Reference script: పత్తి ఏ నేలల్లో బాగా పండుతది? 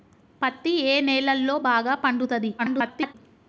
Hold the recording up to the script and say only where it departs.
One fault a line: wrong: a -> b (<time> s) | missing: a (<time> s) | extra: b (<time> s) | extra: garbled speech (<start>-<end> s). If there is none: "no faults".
extra: garbled speech (2.6-3.1 s)